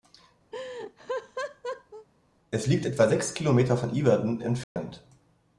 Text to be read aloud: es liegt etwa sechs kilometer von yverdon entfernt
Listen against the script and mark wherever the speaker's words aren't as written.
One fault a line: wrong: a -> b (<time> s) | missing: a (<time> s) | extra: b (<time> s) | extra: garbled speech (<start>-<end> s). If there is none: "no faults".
no faults